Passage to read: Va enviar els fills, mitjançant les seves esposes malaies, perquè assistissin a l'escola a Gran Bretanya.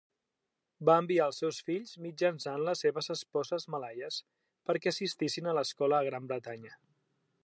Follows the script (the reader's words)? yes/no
no